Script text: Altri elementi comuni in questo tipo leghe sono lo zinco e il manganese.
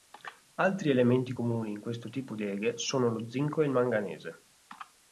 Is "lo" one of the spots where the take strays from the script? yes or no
no